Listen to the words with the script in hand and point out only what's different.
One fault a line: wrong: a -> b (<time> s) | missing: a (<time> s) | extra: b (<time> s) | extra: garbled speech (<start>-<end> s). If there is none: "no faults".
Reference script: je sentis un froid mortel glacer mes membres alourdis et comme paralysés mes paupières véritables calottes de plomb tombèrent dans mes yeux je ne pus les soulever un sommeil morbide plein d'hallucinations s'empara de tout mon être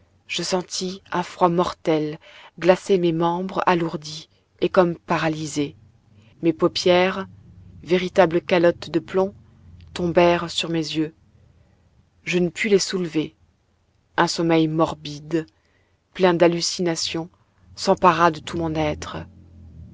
wrong: dans -> sur (10.5 s)